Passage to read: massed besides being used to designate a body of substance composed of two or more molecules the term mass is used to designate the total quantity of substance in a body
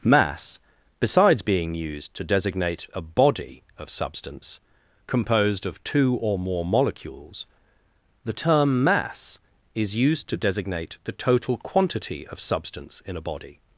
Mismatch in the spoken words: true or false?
true